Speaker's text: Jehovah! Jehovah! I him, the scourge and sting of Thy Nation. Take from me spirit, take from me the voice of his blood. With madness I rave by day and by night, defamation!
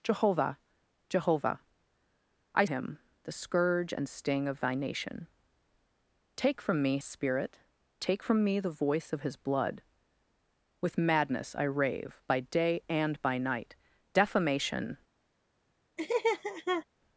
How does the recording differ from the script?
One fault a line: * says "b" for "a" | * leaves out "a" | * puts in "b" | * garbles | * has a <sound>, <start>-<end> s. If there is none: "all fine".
* has a laugh, 16.0-16.9 s